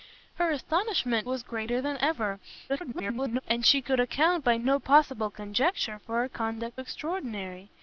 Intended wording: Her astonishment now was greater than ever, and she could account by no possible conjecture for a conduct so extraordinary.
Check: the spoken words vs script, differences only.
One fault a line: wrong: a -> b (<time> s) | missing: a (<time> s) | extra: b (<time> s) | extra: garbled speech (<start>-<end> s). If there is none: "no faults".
missing: now (1.3 s)
extra: garbled speech (2.7-3.4 s)
missing: so (6.8 s)